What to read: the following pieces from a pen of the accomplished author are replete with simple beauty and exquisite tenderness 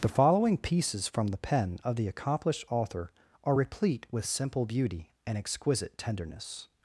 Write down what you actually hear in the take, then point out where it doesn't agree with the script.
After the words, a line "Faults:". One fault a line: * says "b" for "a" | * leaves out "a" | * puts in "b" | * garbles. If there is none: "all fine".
the following pieces from the pen of the accomplished author are replete with simple beauty and exquisite tenderness
Faults:
* says "the" for "a"